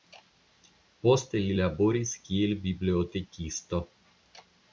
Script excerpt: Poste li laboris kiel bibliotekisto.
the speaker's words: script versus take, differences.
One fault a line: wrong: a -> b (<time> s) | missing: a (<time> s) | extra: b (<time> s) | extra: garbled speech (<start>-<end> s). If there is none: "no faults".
no faults